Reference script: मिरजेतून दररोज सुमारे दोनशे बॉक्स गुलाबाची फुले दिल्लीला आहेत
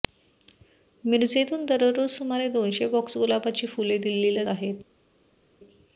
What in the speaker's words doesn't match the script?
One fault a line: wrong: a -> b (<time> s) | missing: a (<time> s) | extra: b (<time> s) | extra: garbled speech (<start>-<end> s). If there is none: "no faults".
no faults